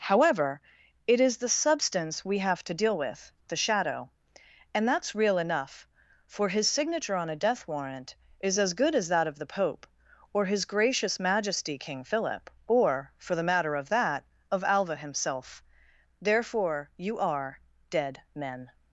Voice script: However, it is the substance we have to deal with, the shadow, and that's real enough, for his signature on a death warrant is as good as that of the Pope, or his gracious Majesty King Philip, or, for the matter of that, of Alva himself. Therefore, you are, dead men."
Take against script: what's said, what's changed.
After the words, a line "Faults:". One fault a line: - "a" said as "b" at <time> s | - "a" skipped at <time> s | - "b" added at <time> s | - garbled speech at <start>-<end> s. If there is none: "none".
However, it is the substance we have to deal with, the shadow, and that's real enough, for his signature on a death warrant is as good as that of the Pope, or his gracious Majesty King Philip, or, for the matter of that, of Alva himself. Therefore, you are, dead men."
Faults:
none